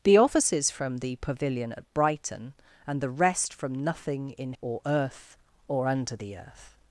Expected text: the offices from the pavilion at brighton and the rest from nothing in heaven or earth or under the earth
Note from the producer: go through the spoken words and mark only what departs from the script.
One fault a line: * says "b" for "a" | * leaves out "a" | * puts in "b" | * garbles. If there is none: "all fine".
* leaves out "heaven"